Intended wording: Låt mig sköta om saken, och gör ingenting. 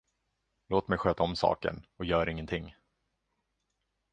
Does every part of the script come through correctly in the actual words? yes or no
yes